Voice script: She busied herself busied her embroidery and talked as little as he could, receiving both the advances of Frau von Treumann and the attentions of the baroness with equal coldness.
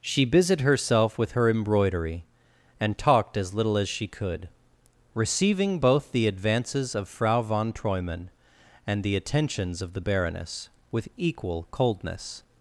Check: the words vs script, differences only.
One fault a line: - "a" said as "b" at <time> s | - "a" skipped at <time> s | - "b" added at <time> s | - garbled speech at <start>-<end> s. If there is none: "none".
- "busied" said as "with" at 1.2 s
- "he" said as "she" at 3.9 s